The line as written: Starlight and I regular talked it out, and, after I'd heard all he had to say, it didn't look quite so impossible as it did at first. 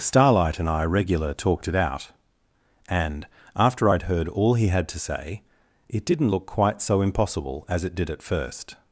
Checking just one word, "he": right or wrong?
right